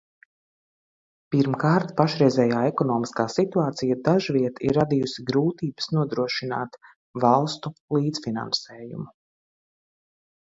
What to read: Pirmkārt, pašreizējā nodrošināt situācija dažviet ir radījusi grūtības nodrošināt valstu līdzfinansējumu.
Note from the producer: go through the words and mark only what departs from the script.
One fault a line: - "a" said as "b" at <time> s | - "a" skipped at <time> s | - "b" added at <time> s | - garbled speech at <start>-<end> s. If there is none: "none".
- "nodrošināt" said as "ekonomiskā" at 2.7 s